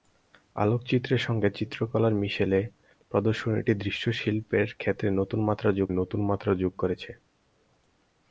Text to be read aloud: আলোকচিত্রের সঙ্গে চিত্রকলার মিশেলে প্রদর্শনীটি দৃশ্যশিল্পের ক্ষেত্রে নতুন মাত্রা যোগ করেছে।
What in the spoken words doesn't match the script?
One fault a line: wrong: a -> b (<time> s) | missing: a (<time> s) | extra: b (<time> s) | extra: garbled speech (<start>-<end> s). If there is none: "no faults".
extra: নতুন মাত্রা যোগ (5.9 s)